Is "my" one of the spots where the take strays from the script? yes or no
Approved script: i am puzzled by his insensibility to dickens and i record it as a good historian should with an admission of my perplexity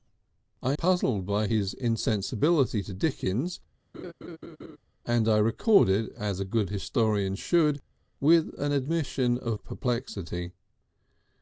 yes